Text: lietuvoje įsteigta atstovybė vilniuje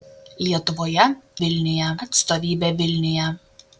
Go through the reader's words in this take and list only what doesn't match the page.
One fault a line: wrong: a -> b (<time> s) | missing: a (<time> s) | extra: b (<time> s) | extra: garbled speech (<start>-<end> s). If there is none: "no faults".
wrong: įsteigta -> vilniuje (1.4 s)